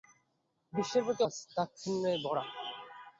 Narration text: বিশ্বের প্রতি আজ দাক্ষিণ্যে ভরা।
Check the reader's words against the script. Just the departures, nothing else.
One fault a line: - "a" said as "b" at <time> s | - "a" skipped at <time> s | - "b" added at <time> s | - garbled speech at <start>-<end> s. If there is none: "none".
none